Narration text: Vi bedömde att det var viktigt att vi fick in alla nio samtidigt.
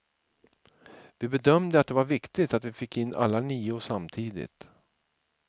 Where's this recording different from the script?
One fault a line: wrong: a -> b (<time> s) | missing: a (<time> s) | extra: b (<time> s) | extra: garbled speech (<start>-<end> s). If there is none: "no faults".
no faults